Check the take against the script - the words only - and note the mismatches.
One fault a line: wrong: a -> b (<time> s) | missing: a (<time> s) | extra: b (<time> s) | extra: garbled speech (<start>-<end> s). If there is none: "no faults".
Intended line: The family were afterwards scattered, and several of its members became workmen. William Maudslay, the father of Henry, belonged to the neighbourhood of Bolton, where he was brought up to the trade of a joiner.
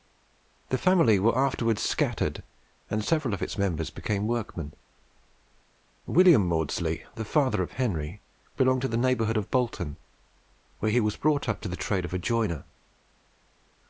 no faults